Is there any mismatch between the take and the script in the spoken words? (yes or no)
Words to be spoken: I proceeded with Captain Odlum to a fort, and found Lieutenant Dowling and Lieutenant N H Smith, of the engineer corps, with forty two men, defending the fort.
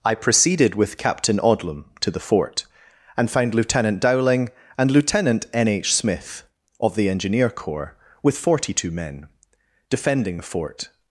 yes